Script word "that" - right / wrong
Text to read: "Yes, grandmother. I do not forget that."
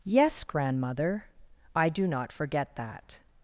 right